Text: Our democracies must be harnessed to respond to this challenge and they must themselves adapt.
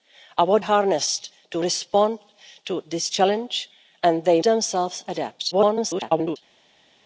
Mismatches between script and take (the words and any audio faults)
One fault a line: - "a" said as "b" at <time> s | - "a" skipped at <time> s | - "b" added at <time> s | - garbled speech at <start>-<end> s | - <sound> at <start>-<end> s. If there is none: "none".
- "democracies must be" skipped at 0.6 s
- "must" skipped at 4.4 s
- garbled speech at 5.5-6.4 s